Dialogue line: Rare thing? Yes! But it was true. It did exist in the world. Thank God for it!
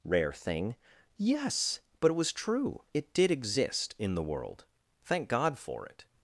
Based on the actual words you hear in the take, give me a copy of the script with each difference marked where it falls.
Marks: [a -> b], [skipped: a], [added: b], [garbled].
Rare thing? Yes! But it was true. It did exist in the world. Thank God for it!